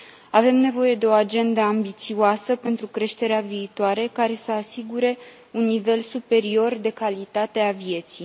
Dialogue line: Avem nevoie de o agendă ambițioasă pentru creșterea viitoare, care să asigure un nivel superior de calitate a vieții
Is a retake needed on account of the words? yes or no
no